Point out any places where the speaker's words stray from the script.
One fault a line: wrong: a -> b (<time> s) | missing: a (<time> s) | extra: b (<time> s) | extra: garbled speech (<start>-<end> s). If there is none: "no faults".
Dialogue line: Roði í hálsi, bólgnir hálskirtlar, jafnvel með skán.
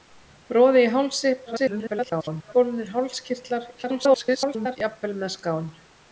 extra: garbled speech (1.5-2.5 s)
extra: garbled speech (3.8-4.8 s)